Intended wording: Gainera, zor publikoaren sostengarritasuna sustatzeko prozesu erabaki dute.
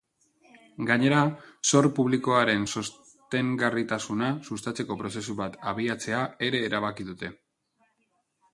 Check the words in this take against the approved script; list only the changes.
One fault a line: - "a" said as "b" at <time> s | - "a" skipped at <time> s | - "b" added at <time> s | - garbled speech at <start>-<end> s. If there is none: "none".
- "bat abiatzea ere" added at 5.4 s